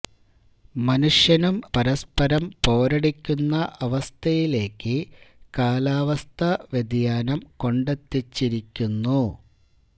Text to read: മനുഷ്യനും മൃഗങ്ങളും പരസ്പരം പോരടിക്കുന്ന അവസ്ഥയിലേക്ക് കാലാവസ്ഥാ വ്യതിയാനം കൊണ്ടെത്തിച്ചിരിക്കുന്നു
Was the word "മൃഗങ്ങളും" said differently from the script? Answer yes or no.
yes